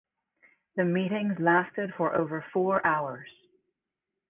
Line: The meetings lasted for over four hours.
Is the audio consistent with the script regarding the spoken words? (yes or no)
yes